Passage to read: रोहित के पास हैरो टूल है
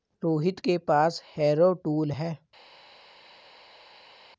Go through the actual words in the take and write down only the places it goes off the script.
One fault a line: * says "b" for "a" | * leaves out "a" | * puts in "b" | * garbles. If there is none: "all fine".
all fine